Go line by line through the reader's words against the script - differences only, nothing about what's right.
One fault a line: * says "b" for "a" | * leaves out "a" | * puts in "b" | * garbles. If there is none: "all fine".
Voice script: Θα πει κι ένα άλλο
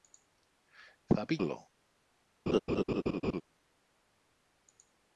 * leaves out "κι ένα"